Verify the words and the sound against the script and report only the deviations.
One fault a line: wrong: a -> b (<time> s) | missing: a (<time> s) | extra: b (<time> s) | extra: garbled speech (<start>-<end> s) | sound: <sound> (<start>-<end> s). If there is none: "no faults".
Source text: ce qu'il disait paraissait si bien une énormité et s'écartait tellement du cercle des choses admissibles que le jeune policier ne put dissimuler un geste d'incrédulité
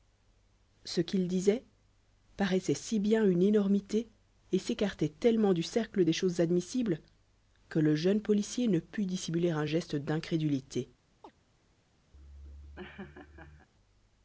sound: chirp (11.2-11.3 s)
sound: laugh (12.1-13.7 s)